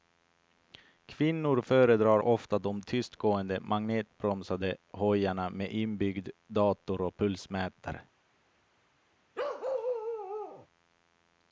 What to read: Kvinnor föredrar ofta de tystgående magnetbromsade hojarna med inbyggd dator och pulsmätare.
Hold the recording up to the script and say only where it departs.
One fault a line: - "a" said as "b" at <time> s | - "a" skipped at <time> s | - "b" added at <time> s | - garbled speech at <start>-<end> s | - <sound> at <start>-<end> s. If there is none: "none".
- bark at 9.3-10.7 s